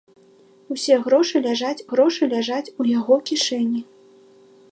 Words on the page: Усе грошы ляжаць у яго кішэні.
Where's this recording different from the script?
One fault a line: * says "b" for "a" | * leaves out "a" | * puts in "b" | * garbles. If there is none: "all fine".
* puts in "грошы ляжаць"